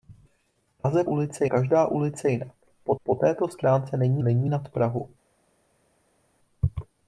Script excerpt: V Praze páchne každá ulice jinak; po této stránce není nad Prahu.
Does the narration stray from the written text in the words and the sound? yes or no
yes